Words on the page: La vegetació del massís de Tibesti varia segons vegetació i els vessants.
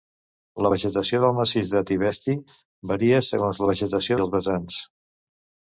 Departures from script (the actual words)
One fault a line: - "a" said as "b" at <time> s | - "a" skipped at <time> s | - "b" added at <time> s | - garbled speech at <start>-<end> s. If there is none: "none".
none